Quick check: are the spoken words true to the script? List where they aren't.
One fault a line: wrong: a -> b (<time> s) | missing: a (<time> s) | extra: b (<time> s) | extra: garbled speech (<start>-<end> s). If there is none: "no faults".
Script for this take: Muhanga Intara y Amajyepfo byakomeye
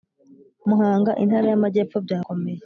no faults